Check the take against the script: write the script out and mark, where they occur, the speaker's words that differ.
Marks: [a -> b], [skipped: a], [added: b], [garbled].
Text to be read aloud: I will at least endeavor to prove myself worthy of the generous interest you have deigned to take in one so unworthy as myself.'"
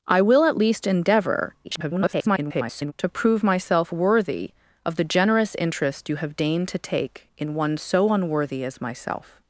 I will at least endeavor [garbled] to prove myself worthy of the generous interest you have deigned to take in one so unworthy as myself.'"